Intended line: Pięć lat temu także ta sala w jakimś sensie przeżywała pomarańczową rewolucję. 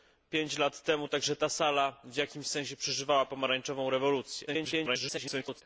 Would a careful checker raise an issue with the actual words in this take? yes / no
yes